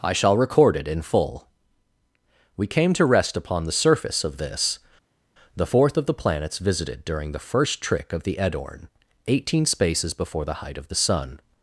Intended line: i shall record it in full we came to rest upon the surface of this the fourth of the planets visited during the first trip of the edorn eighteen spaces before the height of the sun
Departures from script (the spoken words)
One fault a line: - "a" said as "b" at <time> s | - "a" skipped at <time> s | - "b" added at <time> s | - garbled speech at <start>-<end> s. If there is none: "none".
- "trip" said as "trick" at 7.8 s